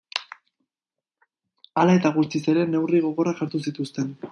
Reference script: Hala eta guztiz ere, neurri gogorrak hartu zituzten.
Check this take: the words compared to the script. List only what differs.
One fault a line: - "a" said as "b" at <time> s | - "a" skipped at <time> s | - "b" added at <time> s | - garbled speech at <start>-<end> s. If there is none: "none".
none